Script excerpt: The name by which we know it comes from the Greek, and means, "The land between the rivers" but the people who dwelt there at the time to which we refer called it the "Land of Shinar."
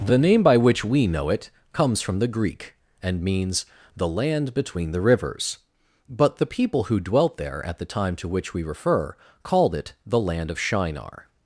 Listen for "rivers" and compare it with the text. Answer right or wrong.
right